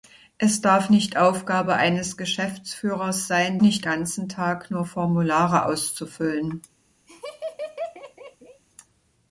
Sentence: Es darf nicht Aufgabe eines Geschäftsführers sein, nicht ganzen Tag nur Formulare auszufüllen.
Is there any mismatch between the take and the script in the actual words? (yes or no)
no